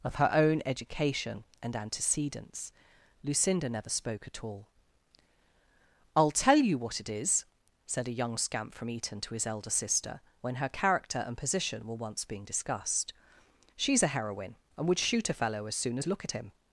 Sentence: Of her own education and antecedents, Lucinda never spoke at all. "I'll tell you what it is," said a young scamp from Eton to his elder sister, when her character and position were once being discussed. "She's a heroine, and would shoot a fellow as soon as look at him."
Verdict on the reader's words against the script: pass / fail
pass